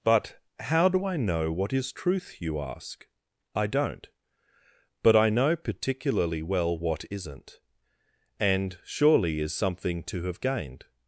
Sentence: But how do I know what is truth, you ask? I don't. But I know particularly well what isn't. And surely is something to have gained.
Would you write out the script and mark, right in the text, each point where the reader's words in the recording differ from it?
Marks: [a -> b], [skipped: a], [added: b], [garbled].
But how do I know what is truth, you ask? I don't. But I know particularly well what isn't. And surely is something to have gained.